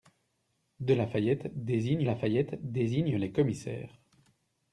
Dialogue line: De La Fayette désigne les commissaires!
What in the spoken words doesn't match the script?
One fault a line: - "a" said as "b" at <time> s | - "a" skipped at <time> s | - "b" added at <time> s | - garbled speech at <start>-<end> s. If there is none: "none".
- "La Fayette désigne" added at 2.0 s